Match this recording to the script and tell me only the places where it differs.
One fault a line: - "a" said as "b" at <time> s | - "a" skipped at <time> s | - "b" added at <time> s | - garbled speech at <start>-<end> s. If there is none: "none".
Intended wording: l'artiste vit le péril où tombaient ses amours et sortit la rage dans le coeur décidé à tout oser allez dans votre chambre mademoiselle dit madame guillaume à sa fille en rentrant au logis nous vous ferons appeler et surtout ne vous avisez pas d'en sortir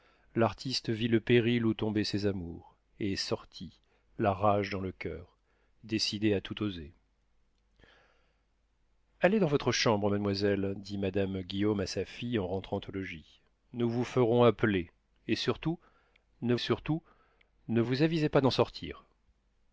- "surtout ne" added at 16.6 s